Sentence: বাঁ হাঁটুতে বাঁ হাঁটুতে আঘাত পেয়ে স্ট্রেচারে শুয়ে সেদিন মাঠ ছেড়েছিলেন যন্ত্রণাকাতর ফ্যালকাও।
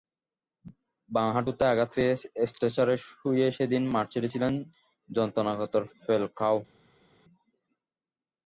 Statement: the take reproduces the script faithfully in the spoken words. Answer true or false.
false